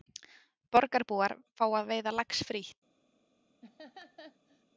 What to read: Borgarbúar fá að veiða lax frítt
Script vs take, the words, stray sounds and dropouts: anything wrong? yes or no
yes